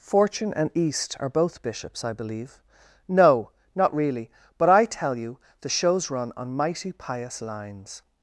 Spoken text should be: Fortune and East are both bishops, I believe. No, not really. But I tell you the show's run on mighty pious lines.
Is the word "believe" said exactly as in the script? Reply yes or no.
yes